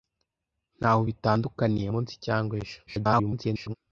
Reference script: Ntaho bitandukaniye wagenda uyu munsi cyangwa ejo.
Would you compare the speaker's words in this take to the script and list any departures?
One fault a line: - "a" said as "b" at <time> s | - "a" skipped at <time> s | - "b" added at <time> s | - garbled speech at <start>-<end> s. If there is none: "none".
- "wagenda uyu" skipped at 1.9 s
- garbled speech at 2.9-3.7 s